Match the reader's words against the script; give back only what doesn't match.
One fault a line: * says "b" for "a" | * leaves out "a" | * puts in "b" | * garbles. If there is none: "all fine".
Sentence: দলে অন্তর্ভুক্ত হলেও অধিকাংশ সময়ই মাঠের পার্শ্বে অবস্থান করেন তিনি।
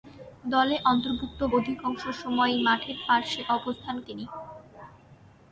* leaves out "হলেও"
* leaves out "করেন"